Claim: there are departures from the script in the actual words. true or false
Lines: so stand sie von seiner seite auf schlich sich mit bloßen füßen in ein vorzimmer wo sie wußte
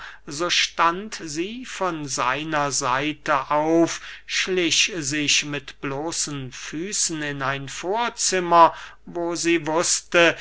false